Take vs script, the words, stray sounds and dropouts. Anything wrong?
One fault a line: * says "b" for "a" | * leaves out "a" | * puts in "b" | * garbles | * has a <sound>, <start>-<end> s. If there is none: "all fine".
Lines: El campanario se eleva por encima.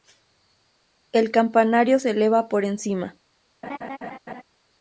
* has a laugh, 3.6-4.4 s